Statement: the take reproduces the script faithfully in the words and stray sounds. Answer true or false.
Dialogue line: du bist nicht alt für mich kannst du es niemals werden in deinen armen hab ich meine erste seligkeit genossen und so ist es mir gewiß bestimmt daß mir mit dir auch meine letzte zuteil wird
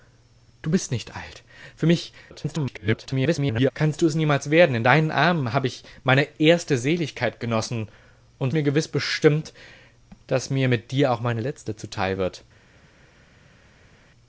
false